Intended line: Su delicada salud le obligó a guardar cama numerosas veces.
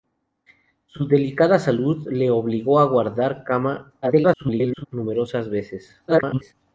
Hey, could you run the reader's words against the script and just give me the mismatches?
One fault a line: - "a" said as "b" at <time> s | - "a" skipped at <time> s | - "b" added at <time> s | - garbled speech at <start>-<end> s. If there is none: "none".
- garbled speech at 4.0-4.9 s
- garbled speech at 6.1-6.5 s